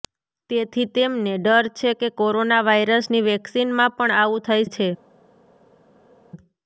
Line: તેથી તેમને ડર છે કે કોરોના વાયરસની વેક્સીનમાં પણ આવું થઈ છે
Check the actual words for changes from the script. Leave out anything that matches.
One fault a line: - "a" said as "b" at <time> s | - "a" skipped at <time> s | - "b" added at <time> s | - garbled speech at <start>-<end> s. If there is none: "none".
none